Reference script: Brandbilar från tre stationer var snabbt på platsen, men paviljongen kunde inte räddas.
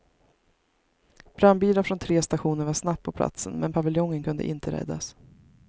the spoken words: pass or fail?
pass